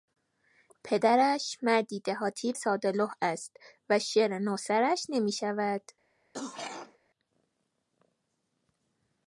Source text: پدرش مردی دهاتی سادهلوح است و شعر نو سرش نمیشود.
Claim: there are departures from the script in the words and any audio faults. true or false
true